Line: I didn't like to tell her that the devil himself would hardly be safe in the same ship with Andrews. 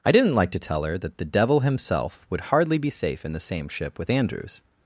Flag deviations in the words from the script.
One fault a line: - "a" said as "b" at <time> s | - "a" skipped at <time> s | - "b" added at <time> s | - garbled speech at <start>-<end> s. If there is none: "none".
none